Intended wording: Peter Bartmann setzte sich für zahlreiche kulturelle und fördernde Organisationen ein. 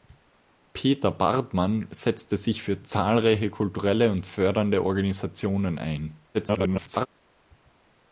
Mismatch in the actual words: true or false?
true